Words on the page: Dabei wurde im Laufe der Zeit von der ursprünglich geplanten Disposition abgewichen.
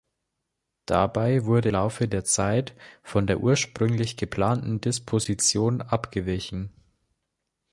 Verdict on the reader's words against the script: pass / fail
fail